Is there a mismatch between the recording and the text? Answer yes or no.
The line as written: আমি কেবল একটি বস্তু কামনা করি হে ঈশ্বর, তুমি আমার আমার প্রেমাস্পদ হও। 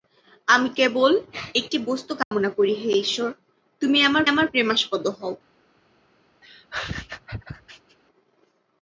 no